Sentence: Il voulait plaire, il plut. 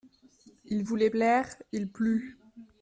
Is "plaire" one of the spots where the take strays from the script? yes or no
no